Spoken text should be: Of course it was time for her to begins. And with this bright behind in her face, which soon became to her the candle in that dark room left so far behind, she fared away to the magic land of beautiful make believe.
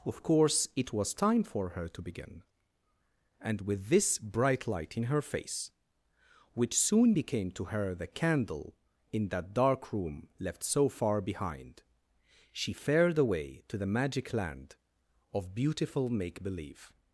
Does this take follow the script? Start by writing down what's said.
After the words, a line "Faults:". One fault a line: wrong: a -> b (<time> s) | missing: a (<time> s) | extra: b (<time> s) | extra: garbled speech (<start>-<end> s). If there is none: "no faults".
Of course it was time for her to begin. And with this bright light in her face, which soon became to her the candle in that dark room left so far behind, she fared away to the magic land of beautiful make believe.
Faults:
wrong: begins -> begin (2.0 s)
wrong: behind -> light (4.7 s)